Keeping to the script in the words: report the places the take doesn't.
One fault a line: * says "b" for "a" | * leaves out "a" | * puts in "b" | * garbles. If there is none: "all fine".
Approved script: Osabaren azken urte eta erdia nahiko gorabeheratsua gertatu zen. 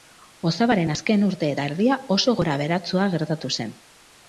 * says "oso" for "nahiko"